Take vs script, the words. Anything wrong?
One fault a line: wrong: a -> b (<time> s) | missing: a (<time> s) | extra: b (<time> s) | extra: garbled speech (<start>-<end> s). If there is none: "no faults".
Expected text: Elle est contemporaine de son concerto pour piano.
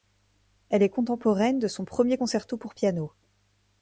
extra: premier (1.9 s)